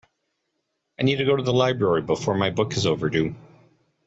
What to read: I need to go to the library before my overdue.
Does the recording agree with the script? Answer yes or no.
no